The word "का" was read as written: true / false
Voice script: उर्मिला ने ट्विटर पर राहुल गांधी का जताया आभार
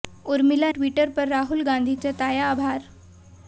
false